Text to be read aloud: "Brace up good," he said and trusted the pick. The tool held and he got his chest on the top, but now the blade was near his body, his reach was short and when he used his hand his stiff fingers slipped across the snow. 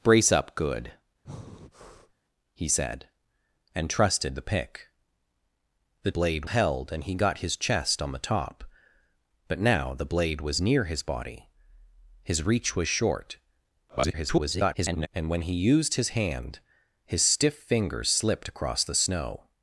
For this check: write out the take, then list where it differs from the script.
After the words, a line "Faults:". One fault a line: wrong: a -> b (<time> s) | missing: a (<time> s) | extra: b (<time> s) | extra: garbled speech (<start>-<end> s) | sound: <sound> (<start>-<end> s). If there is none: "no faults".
"Brace up good," he said and trusted the pick. The blade held and he got his chest on the top, but now the blade was near his body, his reach was short [garbled] and when he used his hand his stiff fingers slipped across the snow.
Faults:
sound: breath (1.2-2.1 s)
wrong: tool -> blade (6.1 s)
extra: garbled speech (13.9-15.1 s)